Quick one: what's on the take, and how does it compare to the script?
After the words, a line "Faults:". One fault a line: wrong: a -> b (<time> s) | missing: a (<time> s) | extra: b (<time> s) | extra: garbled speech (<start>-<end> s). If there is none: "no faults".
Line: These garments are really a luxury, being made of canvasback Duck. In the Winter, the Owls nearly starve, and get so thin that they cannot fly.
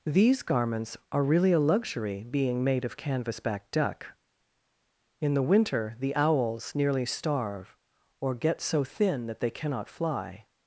These garments are really a luxury, being made of canvasback Duck. In the Winter, the Owls nearly starve, or get so thin that they cannot fly.
Faults:
wrong: and -> or (8.2 s)